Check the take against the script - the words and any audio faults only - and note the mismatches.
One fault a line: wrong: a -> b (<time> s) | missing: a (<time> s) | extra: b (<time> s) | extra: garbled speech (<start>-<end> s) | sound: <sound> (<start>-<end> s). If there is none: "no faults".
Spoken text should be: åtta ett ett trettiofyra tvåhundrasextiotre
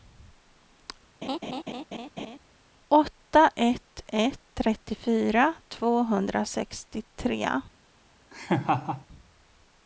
sound: laugh (1.2-2.4 s)
sound: laugh (8.3-9.1 s)